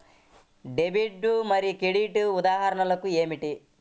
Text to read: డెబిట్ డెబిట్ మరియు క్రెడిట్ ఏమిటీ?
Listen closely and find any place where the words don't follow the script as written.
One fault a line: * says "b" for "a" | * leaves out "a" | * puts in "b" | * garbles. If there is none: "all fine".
* leaves out "డెబిట్"
* puts in "ఉదాహరణలు"